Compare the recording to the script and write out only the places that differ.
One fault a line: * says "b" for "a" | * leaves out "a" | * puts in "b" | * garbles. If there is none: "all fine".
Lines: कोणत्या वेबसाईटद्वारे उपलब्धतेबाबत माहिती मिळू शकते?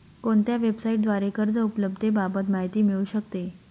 * puts in "कर्ज"